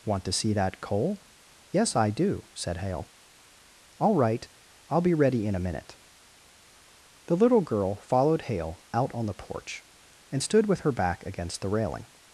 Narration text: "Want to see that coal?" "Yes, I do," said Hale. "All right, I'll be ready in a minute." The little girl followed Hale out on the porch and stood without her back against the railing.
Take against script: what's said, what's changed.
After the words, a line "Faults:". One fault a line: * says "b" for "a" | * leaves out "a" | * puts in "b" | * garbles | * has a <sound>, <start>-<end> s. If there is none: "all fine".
"Want to see that coal?" "Yes, I do," said Hale. "All right, I'll be ready in a minute." The little girl followed Hale out on the porch and stood with her back against the railing.
Faults:
* says "with" for "without"